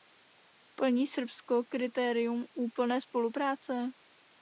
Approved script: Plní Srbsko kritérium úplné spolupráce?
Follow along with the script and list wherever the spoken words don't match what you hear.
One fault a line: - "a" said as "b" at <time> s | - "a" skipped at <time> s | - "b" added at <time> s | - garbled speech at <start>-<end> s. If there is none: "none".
none